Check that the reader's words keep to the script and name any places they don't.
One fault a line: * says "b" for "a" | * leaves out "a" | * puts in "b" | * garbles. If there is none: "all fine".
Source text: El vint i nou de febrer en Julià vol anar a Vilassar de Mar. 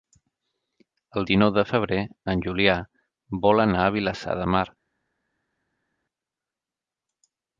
* leaves out "vint"